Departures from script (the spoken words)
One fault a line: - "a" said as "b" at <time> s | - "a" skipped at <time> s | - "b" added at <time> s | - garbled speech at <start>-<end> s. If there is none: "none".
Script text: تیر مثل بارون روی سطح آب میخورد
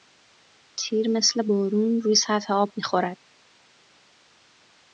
none